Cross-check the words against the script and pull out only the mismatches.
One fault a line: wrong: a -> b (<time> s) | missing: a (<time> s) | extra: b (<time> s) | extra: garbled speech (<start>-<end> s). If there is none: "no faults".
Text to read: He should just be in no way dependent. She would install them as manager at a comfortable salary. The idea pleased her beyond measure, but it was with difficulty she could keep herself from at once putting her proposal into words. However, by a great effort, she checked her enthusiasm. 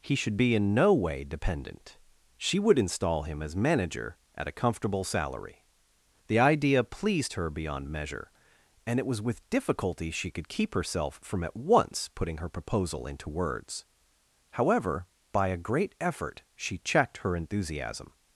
missing: just (0.3 s)
wrong: them -> him (3.2 s)
wrong: but -> and (8.9 s)